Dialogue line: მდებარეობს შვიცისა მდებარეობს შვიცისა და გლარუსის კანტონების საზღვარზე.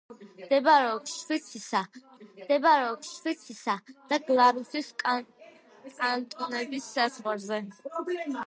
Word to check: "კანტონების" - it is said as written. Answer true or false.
true